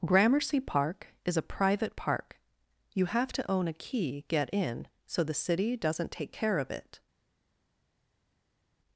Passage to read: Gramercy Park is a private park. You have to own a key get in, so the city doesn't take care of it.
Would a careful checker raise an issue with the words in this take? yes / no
no